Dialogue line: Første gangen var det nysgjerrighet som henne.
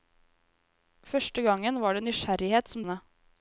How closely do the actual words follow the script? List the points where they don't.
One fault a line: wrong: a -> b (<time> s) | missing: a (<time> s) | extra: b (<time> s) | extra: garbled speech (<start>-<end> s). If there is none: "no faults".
no faults